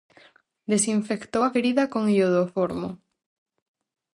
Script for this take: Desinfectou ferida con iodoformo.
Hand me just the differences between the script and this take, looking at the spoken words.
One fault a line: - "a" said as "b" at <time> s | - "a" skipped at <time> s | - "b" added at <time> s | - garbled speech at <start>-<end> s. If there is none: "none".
- "a" added at 1.4 s